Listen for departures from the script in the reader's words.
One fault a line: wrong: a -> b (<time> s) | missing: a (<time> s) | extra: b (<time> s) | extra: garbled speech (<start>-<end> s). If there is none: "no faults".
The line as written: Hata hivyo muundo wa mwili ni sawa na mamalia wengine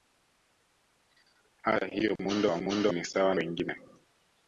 wrong: mwili -> muundo (2.6 s)
missing: na mamalia (3.3 s)